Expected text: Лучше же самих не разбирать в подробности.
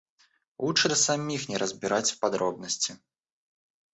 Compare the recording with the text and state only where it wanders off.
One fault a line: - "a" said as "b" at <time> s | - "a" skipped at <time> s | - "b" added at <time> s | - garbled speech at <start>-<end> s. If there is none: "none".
none